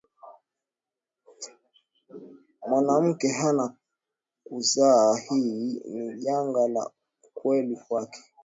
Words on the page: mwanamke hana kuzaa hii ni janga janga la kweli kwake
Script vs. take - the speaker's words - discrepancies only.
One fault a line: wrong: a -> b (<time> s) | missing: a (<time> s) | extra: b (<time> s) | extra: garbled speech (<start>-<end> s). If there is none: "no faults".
missing: janga (6.7 s)